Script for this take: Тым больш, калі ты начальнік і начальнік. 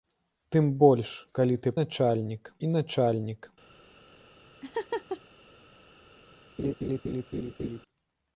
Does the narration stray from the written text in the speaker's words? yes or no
no